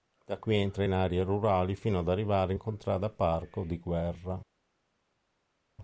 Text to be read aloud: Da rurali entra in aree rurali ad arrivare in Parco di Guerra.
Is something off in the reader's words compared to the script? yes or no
yes